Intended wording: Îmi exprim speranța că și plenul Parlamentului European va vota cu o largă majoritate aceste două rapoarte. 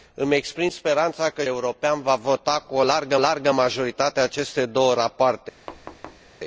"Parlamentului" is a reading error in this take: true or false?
true